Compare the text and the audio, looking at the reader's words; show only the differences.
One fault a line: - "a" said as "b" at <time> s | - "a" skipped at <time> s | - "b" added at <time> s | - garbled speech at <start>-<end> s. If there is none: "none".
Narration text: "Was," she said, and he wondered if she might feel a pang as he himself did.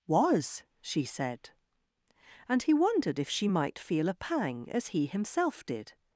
none